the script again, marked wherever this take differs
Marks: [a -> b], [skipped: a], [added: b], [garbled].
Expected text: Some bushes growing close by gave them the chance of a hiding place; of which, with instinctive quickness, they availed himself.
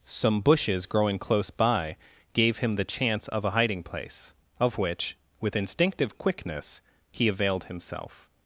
Some bushes growing close by gave [them -> him] the chance of a hiding place; of which, with instinctive quickness, [they -> he] availed himself.